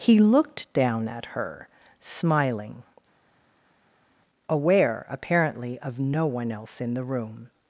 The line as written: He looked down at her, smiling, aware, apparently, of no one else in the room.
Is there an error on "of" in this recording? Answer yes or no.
no